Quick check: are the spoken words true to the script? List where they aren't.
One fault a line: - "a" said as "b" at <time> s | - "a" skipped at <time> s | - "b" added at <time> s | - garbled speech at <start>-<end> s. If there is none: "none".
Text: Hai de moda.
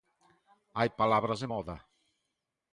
- "palabras" added at 1.0 s